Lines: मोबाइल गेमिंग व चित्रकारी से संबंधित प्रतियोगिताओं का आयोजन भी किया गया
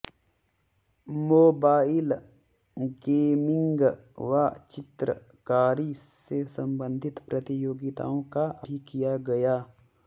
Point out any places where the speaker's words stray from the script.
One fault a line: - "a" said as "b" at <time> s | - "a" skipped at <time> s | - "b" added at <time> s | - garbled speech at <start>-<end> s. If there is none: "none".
- "आयोजन" skipped at 8.4 s